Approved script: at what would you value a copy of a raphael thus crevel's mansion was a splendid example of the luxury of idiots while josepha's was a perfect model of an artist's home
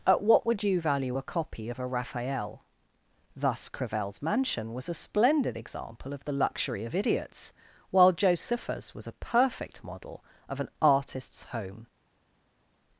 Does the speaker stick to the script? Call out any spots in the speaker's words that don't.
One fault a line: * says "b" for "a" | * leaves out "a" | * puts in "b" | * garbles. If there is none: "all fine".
all fine